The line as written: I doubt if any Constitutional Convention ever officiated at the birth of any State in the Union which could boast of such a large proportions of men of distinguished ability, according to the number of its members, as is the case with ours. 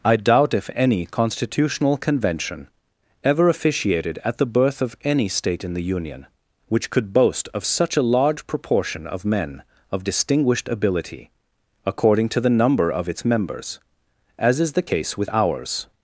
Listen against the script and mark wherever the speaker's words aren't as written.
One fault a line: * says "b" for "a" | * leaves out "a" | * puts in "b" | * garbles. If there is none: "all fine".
* says "proportion" for "proportions"